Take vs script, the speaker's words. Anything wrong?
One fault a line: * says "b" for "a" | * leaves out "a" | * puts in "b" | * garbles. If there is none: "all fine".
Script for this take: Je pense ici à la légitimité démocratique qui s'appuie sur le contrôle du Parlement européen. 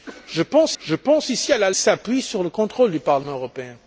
* puts in "je pense"
* leaves out "légitimité démocratique qui"